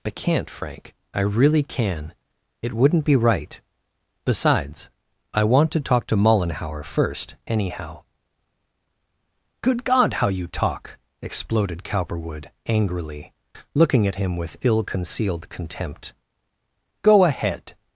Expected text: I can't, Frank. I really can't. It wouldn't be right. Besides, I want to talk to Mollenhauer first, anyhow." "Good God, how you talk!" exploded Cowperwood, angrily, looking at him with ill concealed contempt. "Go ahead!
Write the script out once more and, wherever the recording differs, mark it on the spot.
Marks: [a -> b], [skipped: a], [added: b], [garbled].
I can't, Frank. I really [can't. -> can] It wouldn't be right. Besides, I want to talk to Mollenhauer first, anyhow." "Good God, how you talk!" exploded Cowperwood, angrily, looking at him with ill concealed contempt. "Go ahead!